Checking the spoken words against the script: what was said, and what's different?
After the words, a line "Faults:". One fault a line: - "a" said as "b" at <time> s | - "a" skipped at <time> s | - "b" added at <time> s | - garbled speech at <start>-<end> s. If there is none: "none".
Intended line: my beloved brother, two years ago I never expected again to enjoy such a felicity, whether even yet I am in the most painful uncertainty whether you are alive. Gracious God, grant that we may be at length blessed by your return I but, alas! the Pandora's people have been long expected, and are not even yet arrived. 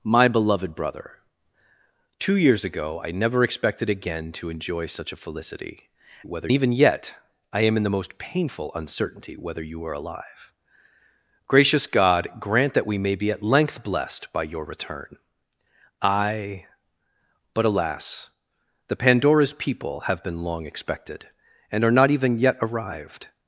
my beloved brother, two years ago I never expected again to enjoy such a felicity, whether even yet I am in the most painful uncertainty whether you are alive. Gracious God, grant that we may be at length blessed by your return I but, alas! the Pandora's people have been long expected, and are not even yet arrived.
Faults:
none